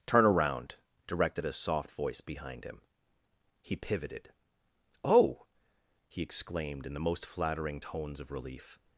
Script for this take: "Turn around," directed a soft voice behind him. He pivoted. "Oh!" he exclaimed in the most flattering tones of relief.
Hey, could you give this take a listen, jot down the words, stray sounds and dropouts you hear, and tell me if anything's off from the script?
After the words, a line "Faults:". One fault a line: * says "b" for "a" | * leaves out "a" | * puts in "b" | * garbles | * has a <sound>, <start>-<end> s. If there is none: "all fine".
"Turn around," directed a soft voice behind him. He pivoted. "Oh!" he exclaimed in the most flattering tones of relief.
Faults:
all fine